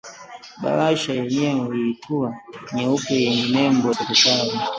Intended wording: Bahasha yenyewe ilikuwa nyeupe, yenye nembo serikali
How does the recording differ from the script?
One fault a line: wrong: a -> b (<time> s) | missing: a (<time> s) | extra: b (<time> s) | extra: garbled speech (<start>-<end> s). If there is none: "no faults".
no faults